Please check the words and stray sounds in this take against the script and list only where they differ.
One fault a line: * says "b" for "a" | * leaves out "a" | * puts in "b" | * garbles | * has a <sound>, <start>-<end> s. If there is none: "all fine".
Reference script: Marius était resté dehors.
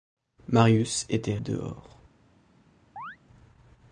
* leaves out "resté"
* has a chirp, 3.0-3.2 s